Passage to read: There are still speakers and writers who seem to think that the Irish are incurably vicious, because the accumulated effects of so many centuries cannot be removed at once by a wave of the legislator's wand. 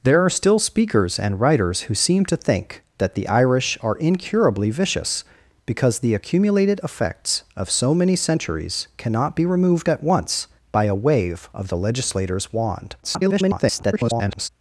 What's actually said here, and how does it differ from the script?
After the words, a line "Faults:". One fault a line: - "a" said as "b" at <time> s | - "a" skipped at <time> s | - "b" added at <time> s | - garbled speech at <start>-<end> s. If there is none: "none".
There are still speakers and writers who seem to think that the Irish are incurably vicious, because the accumulated effects of so many centuries cannot be removed at once by a wave of the legislator's wand. [garbled]
Faults:
- garbled speech at 13.0-14.5 s